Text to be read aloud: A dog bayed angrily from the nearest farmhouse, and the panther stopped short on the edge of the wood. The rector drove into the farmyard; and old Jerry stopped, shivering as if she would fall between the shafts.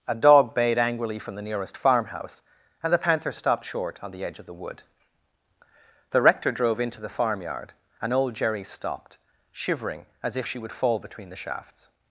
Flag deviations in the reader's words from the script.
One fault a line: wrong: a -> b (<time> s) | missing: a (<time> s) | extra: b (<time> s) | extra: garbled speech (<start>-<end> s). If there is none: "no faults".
no faults